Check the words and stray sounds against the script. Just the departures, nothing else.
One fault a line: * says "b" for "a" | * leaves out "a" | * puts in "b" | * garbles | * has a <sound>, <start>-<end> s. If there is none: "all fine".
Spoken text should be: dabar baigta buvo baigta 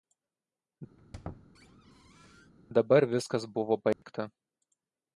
* has a squeak, 1.0-2.5 s
* says "viskas" for "baigta"
* has a dropout, 3.9-4.0 s